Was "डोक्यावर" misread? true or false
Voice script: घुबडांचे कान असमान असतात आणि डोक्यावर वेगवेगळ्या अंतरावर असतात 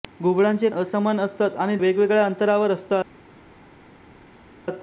true